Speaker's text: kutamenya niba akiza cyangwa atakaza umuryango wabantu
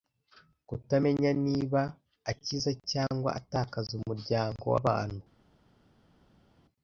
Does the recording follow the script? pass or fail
pass